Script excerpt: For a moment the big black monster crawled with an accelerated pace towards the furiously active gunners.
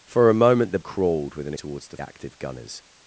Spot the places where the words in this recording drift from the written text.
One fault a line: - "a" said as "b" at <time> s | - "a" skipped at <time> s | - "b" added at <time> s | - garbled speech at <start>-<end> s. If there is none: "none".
- "big black monster" skipped at 0.8 s
- "accelerated pace" skipped at 1.5 s
- "furiously" skipped at 2.0 s